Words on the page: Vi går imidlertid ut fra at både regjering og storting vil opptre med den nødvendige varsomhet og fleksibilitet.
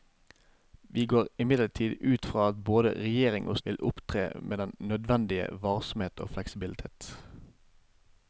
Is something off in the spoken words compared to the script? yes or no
yes